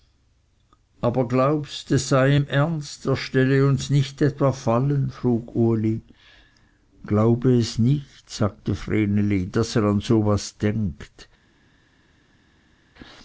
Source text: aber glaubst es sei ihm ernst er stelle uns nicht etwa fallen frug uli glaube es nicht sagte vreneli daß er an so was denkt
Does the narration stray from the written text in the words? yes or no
no